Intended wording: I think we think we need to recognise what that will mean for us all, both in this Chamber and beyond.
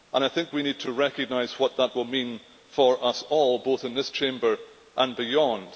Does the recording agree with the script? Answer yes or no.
no